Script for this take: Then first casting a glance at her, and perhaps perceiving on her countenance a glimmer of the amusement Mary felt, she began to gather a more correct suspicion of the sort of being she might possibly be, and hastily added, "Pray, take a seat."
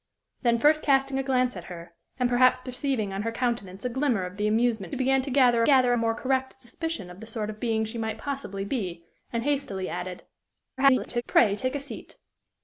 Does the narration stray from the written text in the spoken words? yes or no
yes